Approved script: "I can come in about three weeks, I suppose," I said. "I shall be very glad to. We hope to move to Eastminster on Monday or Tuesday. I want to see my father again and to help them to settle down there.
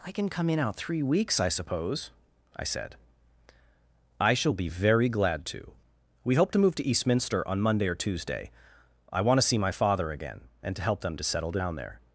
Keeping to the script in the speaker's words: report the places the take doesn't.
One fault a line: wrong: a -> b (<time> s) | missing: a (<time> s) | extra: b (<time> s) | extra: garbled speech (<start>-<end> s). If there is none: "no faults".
wrong: about -> out (0.6 s)